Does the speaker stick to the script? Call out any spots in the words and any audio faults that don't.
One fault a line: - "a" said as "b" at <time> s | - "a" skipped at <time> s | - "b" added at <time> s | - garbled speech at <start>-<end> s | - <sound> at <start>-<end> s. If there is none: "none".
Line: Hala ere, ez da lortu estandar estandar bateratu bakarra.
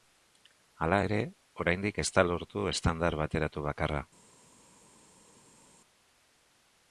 - "oraindik" added at 1.6 s
- "estandar" skipped at 3.2 s